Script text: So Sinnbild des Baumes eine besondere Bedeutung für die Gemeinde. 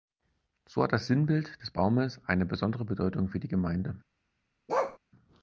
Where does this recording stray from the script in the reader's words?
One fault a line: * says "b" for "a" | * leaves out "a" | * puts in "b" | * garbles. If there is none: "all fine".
* puts in "hat das"